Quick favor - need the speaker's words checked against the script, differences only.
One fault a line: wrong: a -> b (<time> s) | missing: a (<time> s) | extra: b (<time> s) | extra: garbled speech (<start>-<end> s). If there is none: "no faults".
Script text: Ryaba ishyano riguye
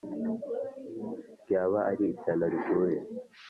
extra: ari (1.9 s)